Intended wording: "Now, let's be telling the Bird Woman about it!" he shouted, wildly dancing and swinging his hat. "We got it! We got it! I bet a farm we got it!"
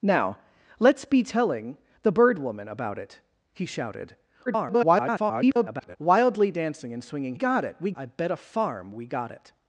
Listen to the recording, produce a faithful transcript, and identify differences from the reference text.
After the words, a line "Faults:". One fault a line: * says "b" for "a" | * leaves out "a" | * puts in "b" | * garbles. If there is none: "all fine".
"Now, let's be telling the Bird Woman about it!" he shouted, [garbled] wildly dancing and swinging got it! We! I bet a farm we got it!"
Faults:
* garbles
* leaves out "his hat We"
* leaves out "got it"